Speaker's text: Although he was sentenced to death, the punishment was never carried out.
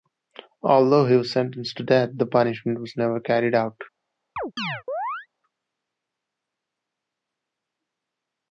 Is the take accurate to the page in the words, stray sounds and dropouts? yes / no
no